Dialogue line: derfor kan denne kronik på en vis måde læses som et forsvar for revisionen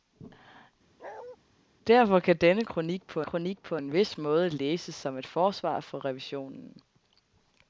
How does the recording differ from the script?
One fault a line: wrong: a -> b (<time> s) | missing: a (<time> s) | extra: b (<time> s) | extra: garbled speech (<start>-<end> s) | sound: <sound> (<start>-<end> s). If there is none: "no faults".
sound: bark (1.0-1.4 s)
extra: kronik på (3.2 s)